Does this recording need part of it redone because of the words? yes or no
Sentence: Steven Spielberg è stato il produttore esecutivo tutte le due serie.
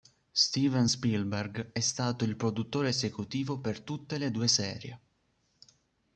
yes